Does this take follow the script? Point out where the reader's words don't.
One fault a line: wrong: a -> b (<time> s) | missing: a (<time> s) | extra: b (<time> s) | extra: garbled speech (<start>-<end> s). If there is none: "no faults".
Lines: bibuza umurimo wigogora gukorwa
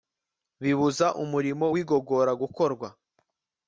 no faults